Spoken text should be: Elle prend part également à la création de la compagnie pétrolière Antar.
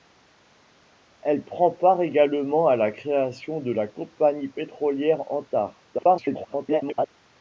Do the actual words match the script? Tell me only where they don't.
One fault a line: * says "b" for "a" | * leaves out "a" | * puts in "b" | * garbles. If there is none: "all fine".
* garbles